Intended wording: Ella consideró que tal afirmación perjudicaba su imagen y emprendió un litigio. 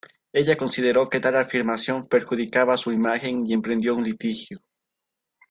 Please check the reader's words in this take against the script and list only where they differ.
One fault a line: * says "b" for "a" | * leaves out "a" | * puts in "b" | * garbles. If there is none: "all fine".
all fine